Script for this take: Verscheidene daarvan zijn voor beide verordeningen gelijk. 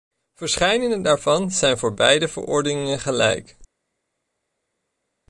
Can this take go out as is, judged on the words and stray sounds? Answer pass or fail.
pass